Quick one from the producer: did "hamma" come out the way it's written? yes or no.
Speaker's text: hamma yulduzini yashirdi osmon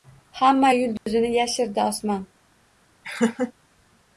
yes